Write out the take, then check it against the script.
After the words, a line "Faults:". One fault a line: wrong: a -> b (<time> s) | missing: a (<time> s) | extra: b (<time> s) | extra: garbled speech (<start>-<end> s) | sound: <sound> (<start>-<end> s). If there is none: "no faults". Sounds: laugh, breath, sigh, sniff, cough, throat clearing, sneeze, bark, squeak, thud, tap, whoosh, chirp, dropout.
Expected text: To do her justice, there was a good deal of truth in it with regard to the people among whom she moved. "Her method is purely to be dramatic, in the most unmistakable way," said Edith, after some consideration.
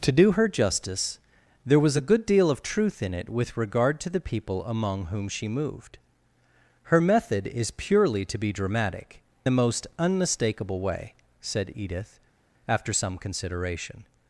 To do her justice, there was a good deal of truth in it with regard to the people among whom she moved. "Her method is purely to be dramatic, the most unmistakable way," said Edith, after some consideration.
Faults:
missing: in (9.2 s)